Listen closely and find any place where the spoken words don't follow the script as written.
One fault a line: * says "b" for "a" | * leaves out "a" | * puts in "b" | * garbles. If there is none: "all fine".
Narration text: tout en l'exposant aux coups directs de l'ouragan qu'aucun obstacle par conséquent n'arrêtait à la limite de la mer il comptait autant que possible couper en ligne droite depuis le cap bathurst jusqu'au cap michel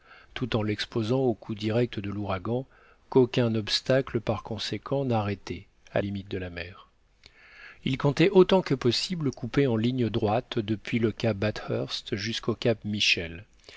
* leaves out "la"